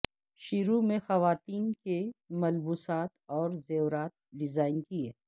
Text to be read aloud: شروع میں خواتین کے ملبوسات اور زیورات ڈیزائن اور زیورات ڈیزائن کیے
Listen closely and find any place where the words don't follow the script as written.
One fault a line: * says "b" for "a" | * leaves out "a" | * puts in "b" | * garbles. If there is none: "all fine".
* leaves out "اور زیورات ڈیزائن"